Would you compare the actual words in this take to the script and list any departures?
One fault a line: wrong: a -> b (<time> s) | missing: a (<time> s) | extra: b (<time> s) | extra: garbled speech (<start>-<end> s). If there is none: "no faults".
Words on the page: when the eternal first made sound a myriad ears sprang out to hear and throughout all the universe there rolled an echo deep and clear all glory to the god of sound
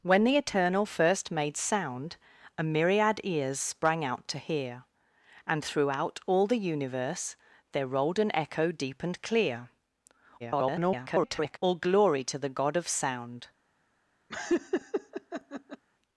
extra: garbled speech (10.4-11.6 s)